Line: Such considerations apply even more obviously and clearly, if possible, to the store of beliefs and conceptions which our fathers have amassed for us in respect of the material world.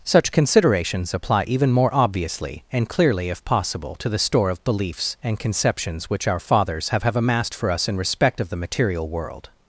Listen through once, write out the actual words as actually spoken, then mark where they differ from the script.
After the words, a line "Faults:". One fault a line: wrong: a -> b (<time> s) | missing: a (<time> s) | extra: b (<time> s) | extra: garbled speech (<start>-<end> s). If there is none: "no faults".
Such considerations apply even more obviously and clearly, if possible, to the store of beliefs and conceptions which our fathers have have amassed for us in respect of the material world.
Faults:
extra: have (7.0 s)